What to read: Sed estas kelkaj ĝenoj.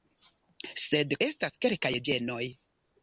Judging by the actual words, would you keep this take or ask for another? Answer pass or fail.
pass